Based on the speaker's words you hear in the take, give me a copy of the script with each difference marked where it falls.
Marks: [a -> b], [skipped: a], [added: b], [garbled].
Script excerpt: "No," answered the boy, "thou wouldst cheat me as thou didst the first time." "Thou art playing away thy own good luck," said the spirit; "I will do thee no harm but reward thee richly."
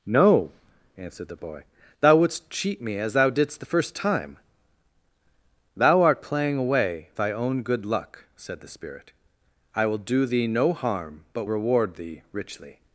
"No," answered the boy, "thou wouldst cheat me as thou didst the first time." "Thou art playing away thy own good luck," said the spirit; "I will do thee no harm but reward thee richly."